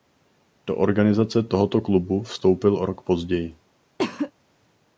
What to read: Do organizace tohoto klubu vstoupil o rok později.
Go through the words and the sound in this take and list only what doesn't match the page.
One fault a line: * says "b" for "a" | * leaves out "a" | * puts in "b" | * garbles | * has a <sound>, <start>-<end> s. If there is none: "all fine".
* has a cough, 4.0-4.3 s